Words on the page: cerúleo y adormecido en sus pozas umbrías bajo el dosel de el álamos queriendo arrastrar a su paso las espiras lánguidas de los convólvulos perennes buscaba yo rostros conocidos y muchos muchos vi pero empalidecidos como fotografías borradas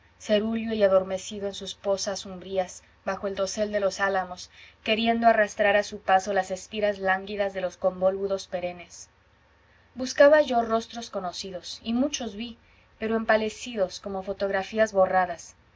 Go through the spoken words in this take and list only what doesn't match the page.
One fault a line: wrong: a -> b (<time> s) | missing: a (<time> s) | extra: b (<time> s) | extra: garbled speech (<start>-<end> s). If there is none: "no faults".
wrong: el -> los (3.8 s)
missing: muchos (12.3 s)